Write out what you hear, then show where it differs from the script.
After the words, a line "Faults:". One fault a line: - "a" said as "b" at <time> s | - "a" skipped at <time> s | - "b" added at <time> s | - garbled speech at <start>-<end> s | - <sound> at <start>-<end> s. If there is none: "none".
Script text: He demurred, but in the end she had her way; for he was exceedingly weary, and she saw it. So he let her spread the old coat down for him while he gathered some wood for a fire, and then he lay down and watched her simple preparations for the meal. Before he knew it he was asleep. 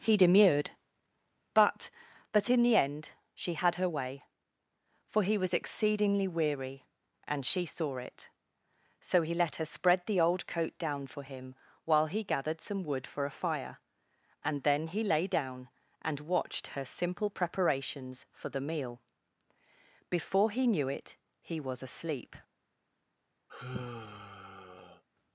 He demurred, but but in the end she had her way; for he was exceedingly weary, and she saw it. So he let her spread the old coat down for him while he gathered some wood for a fire, and then he lay down and watched her simple preparations for the meal. Before he knew it he was asleep.
Faults:
- "but" added at 2.3 s
- sigh at 23.5-25.0 s